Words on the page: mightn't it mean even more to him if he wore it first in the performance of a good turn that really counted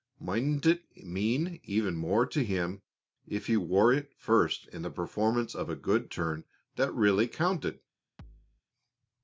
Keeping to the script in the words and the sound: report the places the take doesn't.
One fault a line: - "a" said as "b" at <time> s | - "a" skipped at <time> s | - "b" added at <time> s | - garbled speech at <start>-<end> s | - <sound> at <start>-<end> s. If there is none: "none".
- thud at 8.2-8.6 s